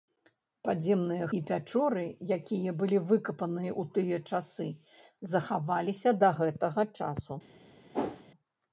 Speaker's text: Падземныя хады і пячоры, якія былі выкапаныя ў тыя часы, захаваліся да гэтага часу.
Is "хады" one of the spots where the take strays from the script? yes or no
yes